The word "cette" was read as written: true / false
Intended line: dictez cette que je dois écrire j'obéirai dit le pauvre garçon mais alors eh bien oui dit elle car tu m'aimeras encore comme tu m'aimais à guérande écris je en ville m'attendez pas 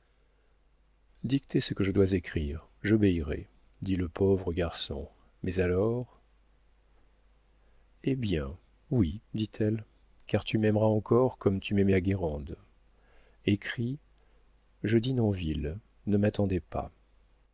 false